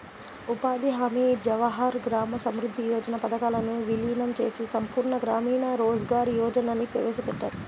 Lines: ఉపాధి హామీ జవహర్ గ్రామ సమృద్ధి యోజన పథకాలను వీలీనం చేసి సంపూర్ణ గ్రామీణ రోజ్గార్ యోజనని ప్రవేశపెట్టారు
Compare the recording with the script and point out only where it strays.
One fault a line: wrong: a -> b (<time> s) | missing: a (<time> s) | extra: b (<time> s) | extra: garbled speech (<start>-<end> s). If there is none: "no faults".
no faults